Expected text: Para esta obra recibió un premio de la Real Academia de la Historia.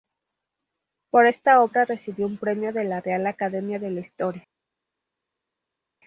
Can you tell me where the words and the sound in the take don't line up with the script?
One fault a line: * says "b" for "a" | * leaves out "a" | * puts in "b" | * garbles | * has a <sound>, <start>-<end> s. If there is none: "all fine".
* says "Por" for "Para"